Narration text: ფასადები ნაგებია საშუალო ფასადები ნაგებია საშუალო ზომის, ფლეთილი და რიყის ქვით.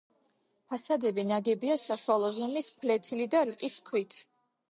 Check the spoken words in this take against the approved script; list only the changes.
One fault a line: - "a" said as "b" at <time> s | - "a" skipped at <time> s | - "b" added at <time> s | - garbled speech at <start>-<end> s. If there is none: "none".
- "ფასადები ნაგებია საშუალო" skipped at 2.3 s